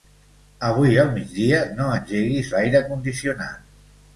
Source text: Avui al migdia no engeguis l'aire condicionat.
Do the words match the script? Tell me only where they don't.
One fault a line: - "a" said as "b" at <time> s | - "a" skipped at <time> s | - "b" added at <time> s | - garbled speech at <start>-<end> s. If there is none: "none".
none